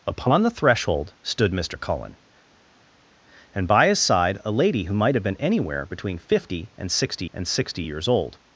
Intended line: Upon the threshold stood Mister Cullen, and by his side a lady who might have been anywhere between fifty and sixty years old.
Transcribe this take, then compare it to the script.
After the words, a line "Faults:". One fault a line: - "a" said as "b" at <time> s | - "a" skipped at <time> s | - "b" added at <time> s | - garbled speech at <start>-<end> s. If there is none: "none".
Upon the threshold stood Mister Cullen, and by his side a lady who might have been anywhere between fifty and sixty and sixty years old.
Faults:
- "and sixty" added at 7.3 s